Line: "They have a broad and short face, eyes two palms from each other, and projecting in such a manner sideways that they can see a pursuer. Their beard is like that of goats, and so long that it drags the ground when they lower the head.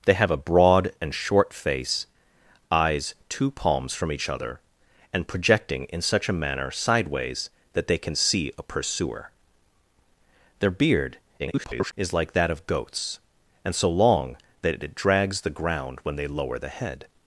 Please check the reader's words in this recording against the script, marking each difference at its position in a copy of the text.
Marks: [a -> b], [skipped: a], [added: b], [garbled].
"They have a broad and short face, eyes two palms from each other, and projecting in such a manner sideways that they can see a pursuer. Their beard [garbled] is like that of goats, and so long that it drags the ground when they lower the head.